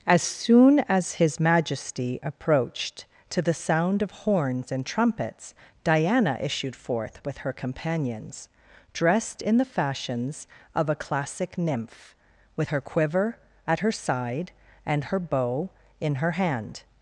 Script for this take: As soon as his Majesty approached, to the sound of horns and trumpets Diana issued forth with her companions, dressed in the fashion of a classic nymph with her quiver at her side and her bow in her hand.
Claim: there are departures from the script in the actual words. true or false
true